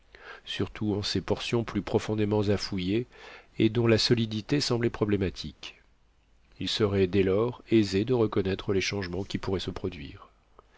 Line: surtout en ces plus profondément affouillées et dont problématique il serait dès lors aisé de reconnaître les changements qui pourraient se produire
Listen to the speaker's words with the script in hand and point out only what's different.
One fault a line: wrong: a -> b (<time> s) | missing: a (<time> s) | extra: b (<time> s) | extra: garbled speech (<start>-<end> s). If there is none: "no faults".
extra: portions (1.2 s)
extra: la solidité semblait (3.9 s)